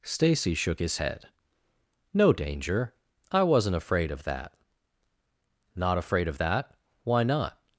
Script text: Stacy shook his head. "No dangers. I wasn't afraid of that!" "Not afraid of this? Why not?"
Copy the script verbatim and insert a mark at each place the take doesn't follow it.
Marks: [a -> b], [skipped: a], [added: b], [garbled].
Stacy shook his head. "No [dangers. -> danger] I wasn't afraid of that!" "Not afraid of [this? -> that] Why not?"